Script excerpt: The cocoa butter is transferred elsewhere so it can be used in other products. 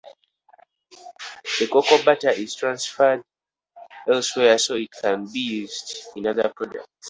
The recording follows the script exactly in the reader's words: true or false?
true